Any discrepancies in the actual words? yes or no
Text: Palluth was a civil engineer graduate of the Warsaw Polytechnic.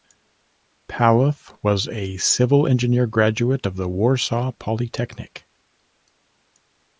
no